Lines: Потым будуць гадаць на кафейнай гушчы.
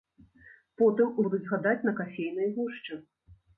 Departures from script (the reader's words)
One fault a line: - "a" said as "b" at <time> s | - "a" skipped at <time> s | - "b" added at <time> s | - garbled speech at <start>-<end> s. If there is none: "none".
none